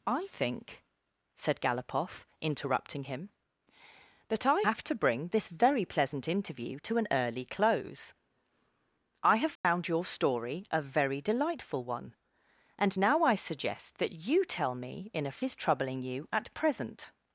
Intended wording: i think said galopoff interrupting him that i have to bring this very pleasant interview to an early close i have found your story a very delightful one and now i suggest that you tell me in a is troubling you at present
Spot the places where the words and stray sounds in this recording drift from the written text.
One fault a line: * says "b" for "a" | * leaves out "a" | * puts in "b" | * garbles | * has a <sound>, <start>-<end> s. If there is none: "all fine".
* has a dropout, 9.6-9.6 s